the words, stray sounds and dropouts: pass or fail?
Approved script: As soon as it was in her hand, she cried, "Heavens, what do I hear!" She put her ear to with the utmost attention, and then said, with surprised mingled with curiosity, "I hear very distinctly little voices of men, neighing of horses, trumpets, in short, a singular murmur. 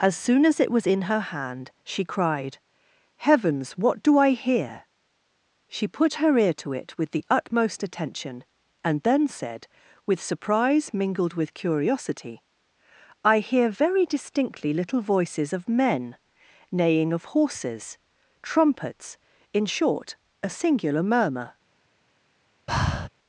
fail